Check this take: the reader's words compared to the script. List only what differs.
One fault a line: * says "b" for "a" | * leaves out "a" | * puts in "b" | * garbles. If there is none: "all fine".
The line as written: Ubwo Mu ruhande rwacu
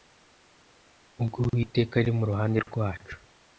* puts in "Uwiteka ari"